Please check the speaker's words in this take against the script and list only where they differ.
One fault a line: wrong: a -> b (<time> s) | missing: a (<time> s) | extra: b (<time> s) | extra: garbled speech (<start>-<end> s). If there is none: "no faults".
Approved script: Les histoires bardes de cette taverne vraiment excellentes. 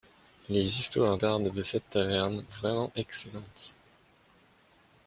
no faults